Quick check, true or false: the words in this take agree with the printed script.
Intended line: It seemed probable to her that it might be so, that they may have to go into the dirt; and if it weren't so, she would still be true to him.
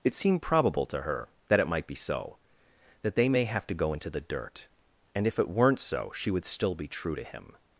true